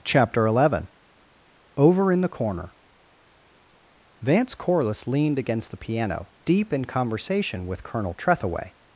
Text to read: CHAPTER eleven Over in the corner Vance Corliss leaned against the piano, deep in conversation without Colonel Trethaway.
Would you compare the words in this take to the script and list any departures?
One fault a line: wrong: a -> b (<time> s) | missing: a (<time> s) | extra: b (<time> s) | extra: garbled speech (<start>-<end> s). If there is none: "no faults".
wrong: without -> with (7.7 s)